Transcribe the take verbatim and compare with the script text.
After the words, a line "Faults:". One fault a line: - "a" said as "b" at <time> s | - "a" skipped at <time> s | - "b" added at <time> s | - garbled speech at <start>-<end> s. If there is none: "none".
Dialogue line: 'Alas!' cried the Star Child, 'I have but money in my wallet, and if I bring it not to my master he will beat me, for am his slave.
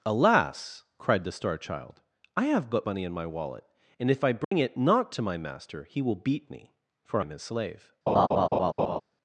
'Alas!' cried the Star Child, 'I have but money in my wallet, and if I bring it not to my master he will beat me, for am his slave.
Faults:
none